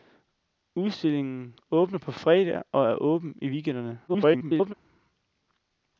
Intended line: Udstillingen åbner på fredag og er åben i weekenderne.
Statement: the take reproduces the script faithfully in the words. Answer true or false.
false